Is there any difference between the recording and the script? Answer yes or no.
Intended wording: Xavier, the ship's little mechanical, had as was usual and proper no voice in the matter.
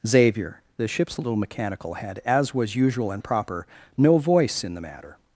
no